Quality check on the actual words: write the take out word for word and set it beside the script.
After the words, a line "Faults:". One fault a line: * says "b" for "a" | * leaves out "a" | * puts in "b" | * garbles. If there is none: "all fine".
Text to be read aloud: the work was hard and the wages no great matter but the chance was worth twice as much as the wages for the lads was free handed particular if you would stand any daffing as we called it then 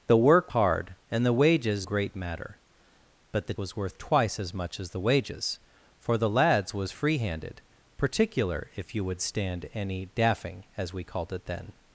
the work hard and the wages great matter but the was worth twice as much as the wages for the lads was free handed particular if you would stand any daffing as we called it then
Faults:
* leaves out "was"
* leaves out "no"
* leaves out "chance"